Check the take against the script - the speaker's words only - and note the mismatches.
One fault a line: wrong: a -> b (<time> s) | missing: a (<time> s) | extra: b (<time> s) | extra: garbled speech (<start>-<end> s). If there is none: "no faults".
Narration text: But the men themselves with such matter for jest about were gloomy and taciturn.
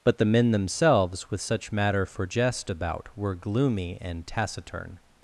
no faults